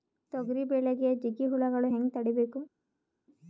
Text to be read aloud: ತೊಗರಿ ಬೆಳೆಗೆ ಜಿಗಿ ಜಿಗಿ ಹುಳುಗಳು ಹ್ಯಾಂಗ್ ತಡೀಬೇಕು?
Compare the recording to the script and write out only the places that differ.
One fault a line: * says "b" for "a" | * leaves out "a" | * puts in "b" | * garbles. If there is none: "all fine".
* leaves out "ಜಿಗಿ"